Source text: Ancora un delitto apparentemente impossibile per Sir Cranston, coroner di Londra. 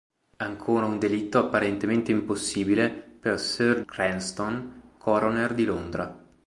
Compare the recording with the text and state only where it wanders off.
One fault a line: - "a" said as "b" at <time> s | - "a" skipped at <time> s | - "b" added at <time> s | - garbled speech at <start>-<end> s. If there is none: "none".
none